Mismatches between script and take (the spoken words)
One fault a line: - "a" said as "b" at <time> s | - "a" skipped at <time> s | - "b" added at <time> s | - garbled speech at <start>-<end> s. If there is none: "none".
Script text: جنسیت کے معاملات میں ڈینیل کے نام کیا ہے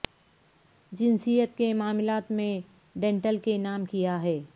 none